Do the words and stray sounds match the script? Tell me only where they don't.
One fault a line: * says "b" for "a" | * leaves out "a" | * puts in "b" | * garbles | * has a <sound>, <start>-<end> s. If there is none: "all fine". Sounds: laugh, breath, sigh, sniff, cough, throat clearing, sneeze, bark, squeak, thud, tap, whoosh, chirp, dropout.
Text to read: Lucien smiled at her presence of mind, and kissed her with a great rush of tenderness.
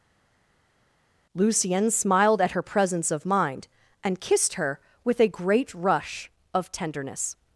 all fine